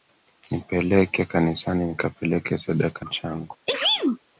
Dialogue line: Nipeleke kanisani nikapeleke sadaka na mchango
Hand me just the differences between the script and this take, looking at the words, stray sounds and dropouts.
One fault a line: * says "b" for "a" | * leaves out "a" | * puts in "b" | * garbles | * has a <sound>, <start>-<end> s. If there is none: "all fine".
* leaves out "na"
* has a sneeze, 3.7-4.2 s